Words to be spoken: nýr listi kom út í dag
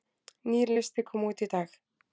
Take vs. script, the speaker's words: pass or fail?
pass